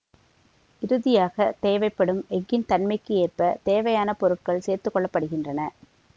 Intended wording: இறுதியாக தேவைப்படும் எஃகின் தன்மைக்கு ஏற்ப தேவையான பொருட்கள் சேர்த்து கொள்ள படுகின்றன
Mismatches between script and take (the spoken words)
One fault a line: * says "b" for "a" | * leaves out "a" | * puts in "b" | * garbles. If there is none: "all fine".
all fine